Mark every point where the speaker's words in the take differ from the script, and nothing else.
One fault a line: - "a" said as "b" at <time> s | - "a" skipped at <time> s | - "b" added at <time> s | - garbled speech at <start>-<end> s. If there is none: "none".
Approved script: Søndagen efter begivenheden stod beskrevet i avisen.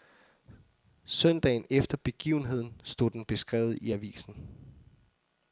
- "den" added at 3.1 s